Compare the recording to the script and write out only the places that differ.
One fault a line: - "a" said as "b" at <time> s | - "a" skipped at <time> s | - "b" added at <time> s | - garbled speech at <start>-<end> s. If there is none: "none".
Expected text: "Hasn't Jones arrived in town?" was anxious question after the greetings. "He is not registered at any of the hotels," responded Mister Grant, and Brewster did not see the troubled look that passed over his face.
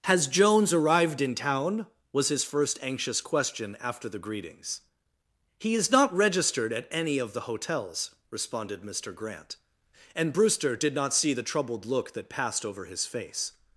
- "Hasn't" said as "Has" at 0.1 s
- "his first" added at 2.3 s